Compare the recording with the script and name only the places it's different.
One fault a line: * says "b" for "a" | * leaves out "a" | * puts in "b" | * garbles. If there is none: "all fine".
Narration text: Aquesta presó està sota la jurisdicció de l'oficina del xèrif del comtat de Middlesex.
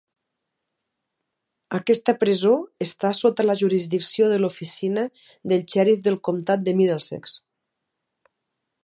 all fine